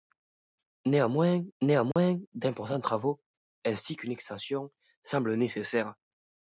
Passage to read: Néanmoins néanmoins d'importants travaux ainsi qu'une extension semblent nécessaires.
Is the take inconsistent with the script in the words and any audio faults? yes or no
yes